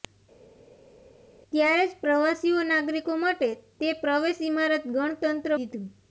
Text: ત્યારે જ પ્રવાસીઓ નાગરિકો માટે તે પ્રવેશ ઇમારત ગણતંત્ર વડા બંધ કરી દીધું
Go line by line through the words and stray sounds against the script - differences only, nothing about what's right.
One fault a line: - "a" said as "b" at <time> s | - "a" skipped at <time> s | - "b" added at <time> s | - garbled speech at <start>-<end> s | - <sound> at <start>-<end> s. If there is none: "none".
- "વડા બંધ કરી" skipped at 5.6 s